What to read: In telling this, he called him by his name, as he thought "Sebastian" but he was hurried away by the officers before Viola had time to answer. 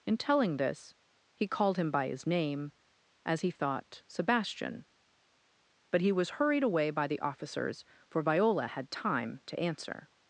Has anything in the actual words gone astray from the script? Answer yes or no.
yes